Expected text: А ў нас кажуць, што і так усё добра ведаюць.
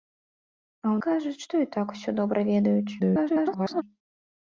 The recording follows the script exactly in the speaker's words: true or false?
false